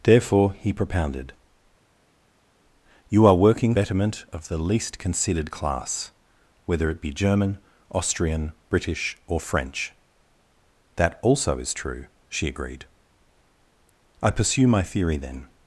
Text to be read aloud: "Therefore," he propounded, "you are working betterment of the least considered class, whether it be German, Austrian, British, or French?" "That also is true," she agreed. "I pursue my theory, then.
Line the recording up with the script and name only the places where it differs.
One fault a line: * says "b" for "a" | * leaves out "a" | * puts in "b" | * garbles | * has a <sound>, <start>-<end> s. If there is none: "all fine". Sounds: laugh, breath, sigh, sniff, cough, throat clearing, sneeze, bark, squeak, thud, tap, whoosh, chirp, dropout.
all fine